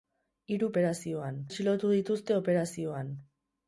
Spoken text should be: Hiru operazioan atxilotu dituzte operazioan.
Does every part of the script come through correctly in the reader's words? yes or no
yes